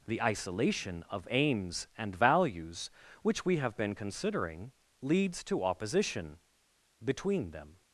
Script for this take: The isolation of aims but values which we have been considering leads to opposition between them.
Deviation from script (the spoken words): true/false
true